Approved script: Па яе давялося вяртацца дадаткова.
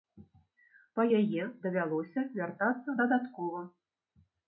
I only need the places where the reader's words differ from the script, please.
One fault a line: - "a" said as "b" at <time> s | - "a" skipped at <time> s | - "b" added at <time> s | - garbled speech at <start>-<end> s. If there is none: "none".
none